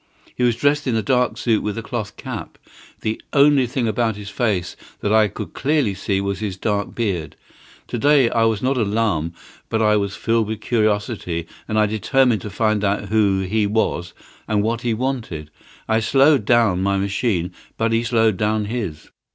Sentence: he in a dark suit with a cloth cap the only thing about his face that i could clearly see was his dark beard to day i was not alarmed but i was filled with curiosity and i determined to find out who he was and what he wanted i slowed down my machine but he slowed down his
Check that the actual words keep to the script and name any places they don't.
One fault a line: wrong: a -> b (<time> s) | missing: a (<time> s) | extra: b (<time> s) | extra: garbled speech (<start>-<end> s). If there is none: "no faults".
extra: was dressed (0.4 s)